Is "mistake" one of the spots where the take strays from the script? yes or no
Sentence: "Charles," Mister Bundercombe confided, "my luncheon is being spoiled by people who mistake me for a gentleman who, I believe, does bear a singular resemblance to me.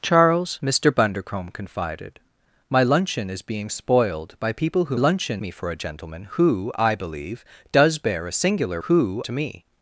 yes